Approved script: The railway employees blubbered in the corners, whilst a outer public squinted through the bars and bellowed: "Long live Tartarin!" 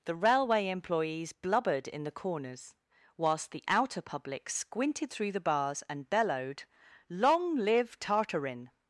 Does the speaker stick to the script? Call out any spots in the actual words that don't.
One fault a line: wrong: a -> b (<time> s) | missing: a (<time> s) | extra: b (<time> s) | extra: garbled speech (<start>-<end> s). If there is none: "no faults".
wrong: a -> the (3.5 s)